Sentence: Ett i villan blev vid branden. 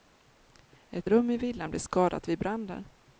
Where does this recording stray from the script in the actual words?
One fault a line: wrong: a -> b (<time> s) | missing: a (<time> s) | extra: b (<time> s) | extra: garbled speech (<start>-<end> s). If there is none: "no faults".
extra: rum (1.1 s)
extra: skadat (1.8 s)